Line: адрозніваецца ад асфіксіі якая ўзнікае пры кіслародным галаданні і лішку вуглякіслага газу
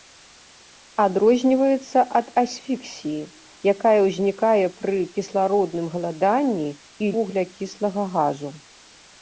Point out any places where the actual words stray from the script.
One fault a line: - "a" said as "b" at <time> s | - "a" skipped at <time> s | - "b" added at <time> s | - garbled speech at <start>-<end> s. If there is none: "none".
- "лішку" skipped at 7.1 s